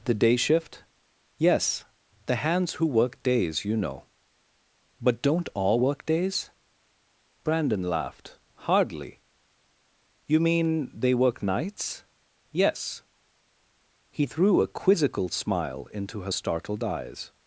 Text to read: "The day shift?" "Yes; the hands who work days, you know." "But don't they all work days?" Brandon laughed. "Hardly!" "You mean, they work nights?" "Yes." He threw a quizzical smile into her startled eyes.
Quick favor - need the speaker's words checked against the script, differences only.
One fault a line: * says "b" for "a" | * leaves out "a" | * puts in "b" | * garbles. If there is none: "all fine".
* leaves out "they"